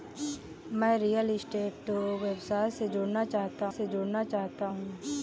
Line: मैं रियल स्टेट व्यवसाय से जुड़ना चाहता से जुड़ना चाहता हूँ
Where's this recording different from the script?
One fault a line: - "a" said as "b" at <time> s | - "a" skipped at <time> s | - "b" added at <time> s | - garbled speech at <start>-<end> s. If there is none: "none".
none